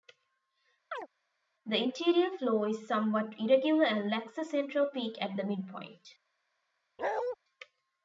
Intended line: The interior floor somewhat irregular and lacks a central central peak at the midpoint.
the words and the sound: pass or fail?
fail